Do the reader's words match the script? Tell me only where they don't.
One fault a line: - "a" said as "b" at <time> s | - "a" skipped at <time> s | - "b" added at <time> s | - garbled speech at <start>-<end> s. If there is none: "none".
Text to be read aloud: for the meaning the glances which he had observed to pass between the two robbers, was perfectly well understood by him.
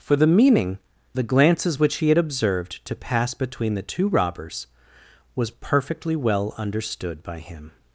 none